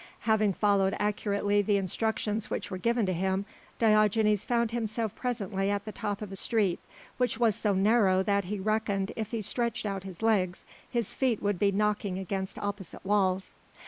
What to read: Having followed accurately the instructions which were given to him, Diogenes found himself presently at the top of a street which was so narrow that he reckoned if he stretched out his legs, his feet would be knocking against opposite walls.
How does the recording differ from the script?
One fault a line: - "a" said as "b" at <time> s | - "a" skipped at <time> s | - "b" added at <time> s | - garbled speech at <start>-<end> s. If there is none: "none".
none